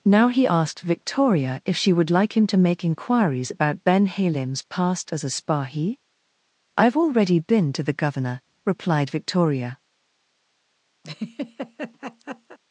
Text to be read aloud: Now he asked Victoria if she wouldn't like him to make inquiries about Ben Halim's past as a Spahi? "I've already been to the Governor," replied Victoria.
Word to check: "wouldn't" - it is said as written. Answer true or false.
false